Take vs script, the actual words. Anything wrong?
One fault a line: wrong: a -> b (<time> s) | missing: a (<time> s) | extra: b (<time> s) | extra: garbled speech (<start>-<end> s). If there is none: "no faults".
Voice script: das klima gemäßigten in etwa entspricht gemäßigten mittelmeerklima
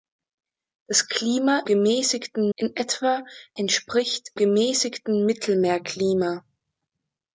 no faults